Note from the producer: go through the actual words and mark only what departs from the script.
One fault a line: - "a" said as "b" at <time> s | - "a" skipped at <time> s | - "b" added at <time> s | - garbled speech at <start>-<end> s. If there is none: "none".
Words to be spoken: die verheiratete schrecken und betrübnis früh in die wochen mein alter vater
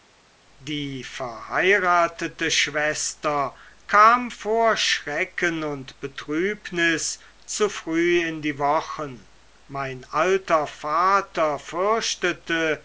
- "schwester kam vor" added at 2.5 s
- "zu" added at 7.4 s